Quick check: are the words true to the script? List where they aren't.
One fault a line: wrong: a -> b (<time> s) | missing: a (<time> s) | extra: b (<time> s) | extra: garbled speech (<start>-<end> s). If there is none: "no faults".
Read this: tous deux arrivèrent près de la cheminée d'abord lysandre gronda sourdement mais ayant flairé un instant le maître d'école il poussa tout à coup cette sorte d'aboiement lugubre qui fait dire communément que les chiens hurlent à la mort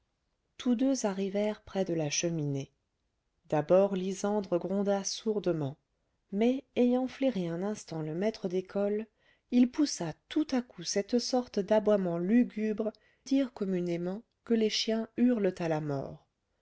missing: qui fait (12.9 s)